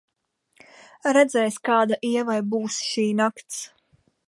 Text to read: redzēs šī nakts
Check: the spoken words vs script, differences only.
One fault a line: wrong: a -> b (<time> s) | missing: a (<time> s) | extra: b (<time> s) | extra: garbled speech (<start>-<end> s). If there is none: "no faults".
extra: kāda ievai būs (1.7 s)